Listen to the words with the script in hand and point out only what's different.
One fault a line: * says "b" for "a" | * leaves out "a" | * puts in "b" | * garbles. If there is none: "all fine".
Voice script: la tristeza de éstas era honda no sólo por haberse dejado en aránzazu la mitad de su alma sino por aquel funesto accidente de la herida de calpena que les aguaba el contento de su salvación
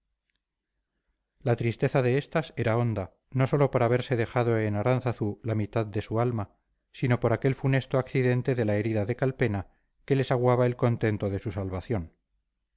all fine